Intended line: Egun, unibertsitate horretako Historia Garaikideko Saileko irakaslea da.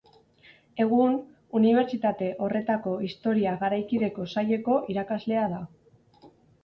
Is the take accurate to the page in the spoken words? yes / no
yes